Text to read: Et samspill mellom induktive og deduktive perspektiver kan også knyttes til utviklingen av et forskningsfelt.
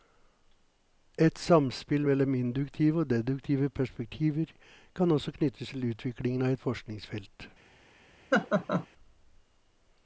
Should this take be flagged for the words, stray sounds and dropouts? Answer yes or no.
yes